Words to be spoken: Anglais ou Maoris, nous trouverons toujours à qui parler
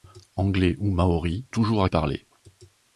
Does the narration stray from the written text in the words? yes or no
yes